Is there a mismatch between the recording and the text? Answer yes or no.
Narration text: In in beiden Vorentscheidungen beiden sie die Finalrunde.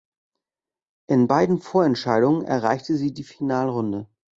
yes